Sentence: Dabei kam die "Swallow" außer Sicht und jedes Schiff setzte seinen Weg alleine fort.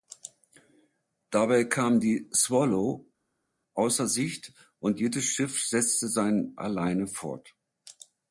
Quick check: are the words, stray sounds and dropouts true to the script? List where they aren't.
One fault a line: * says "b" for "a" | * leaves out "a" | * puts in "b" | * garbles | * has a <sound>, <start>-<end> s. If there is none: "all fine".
* leaves out "Weg"